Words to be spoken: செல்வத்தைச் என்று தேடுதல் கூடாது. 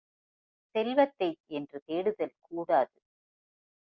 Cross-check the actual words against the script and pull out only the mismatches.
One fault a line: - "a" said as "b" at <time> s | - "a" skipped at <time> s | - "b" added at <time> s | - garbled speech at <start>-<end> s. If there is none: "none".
none